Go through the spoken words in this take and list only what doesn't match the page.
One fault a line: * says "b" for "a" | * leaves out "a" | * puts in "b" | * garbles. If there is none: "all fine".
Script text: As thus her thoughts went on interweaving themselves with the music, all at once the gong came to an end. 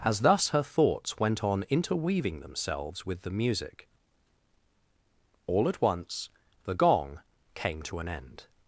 all fine